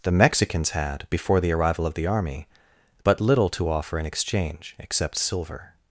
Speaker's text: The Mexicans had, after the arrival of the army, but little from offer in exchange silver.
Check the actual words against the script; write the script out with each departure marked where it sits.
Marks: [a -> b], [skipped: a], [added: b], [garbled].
The Mexicans had, [after -> before] the arrival of the army, but little [from -> to] offer in exchange [added: except] silver.